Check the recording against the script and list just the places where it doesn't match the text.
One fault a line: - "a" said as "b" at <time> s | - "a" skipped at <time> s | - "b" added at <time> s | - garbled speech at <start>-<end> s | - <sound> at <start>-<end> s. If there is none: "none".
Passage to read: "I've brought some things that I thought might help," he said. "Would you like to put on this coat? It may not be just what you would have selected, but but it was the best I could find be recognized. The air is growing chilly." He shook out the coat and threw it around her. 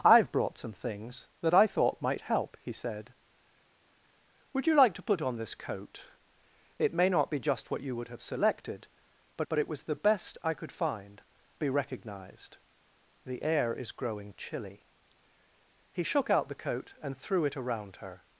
none